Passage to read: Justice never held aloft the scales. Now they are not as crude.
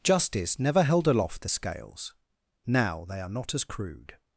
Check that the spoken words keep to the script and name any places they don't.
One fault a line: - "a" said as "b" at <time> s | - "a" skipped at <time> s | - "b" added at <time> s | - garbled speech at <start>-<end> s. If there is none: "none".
none